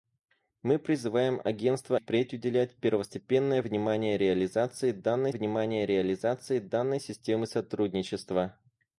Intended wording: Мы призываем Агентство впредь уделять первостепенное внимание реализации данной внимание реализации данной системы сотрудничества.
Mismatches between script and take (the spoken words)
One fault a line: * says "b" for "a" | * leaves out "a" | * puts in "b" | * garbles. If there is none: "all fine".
all fine